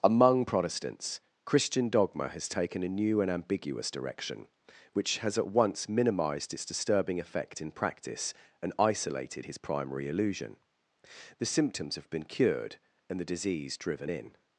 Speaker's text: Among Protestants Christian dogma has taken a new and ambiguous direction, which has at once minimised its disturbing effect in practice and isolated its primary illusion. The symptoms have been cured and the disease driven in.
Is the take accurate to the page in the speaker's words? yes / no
no